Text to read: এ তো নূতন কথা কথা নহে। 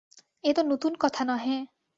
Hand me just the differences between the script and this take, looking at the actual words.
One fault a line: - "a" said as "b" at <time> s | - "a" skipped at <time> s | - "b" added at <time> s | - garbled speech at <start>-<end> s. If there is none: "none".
- "কথা" skipped at 1.2 s